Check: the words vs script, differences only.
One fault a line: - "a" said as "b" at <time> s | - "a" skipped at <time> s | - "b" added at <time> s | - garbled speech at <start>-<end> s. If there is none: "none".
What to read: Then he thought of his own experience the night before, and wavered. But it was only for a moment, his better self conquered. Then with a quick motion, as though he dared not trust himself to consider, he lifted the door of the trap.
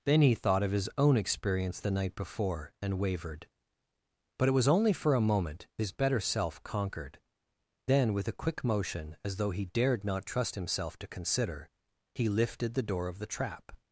none